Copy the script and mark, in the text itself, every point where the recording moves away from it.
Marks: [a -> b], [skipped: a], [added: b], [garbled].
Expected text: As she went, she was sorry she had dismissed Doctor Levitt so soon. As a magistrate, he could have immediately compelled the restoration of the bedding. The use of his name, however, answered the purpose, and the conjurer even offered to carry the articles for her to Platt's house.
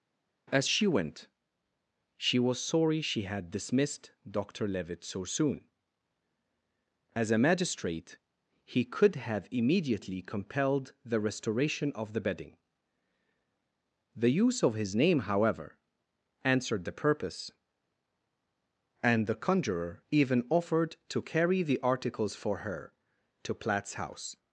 As she went, she was sorry she had dismissed Doctor Levitt so soon. As a magistrate, he could have immediately compelled the restoration of the bedding. The use of his name, however, answered the purpose, and the conjurer even offered to carry the articles for her to Platt's house.